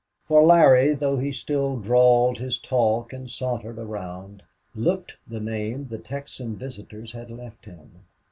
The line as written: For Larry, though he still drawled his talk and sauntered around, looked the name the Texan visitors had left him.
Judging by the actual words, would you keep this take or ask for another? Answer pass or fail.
pass